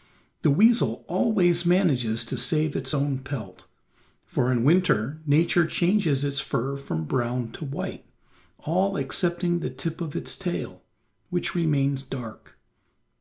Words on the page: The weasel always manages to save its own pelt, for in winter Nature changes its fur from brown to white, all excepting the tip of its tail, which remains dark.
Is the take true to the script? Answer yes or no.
yes